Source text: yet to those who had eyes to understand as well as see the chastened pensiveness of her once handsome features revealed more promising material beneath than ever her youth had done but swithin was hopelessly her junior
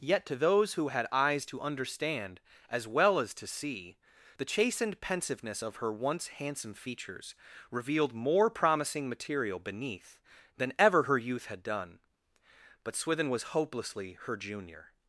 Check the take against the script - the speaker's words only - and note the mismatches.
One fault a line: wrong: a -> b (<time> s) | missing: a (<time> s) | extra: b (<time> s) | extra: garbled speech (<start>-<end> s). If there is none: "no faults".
extra: to (3.4 s)